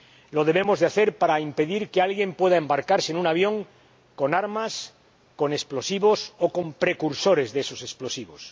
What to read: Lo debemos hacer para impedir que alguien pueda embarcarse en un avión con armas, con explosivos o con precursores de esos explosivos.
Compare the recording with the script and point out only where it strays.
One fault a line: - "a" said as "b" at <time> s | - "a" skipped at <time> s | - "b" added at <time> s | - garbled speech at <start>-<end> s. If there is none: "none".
none